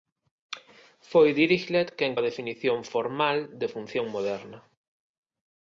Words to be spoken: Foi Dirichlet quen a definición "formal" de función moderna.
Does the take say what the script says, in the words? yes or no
yes